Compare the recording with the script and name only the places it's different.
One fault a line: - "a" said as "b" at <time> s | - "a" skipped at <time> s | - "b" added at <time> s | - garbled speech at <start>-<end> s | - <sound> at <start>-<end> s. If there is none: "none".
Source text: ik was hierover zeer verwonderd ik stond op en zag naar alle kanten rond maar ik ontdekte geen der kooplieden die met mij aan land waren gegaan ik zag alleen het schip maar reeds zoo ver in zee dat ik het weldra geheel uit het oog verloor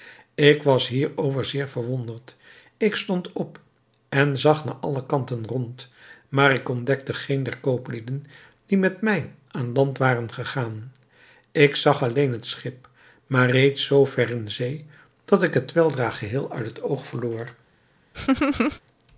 - laugh at 18.1-18.8 s